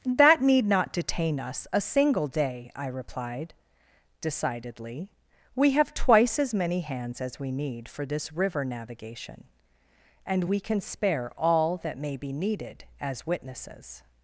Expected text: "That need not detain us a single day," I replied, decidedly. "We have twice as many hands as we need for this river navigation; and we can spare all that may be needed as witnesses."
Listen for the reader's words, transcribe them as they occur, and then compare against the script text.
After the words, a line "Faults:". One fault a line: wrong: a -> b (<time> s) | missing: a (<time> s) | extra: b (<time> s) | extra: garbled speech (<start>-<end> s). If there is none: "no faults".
"That need not detain us a single day," I replied, decidedly. "We have twice as many hands as we need for this river navigation; and we can spare all that may be needed as witnesses."
Faults:
no faults